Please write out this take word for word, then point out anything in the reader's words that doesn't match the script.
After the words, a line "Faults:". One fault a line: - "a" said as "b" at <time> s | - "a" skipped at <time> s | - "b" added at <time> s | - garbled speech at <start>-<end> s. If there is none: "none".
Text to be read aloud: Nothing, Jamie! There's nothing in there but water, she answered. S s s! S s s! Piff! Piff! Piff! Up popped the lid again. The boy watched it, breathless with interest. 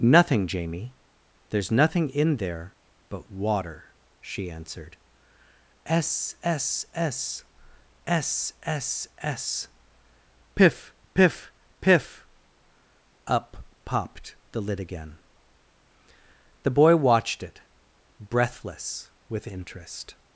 Nothing, Jamie! There's nothing in there but water, she answered. S s s! S s s! Piff! Piff! Piff! Up popped the lid again. The boy watched it, breathless with interest.
Faults:
none